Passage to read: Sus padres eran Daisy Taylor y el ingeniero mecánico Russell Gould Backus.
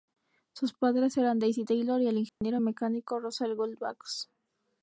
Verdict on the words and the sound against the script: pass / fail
fail